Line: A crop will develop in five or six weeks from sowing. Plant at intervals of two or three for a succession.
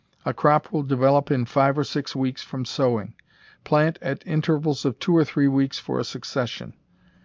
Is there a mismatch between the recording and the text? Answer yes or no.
yes